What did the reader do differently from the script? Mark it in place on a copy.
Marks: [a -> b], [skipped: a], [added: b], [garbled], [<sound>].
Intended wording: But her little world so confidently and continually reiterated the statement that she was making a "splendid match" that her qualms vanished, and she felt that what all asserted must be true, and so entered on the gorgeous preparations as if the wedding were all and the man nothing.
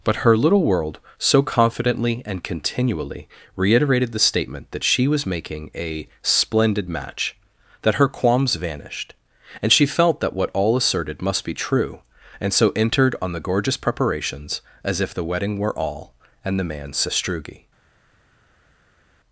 But her little world so confidently and continually reiterated the statement that she was making a "splendid match" that her qualms vanished, and she felt that what all asserted must be true, and so entered on the gorgeous preparations as if the wedding were all and the man [nothing. -> sastrugi]